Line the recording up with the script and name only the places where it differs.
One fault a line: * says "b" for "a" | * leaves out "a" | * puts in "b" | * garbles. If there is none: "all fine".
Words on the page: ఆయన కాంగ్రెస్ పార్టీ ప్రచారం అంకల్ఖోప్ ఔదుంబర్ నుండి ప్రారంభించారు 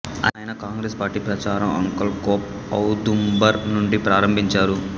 all fine